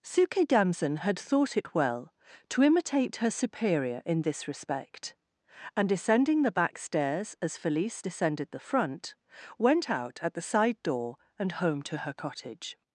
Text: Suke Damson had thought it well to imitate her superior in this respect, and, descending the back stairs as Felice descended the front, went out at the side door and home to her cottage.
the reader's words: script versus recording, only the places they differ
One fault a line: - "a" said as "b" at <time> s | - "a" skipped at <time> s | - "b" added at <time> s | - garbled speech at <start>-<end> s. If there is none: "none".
none